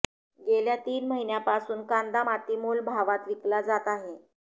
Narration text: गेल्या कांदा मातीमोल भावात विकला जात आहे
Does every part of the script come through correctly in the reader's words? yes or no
no